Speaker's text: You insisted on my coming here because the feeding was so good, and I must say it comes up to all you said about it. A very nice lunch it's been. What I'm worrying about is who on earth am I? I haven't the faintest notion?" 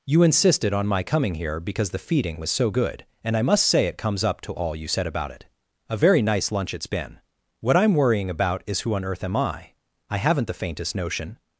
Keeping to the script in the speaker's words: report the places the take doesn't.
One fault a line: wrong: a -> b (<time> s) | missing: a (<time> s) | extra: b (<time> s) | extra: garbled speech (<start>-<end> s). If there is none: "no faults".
no faults